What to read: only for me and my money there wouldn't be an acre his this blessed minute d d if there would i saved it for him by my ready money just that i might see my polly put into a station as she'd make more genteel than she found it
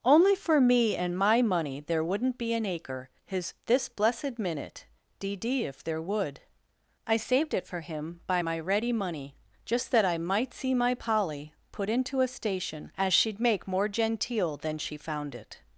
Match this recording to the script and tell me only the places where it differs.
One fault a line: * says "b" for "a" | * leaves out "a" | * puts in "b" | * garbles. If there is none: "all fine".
all fine